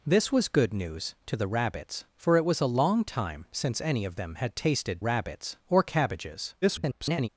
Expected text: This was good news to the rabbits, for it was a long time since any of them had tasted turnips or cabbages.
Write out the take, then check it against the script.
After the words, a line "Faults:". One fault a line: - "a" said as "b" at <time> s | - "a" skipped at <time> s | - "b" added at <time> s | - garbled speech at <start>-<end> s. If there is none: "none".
This was good news to the rabbits, for it was a long time since any of them had tasted rabbits or cabbages. [garbled]
Faults:
- "turnips" said as "rabbits" at 5.0 s
- garbled speech at 6.6-7.3 s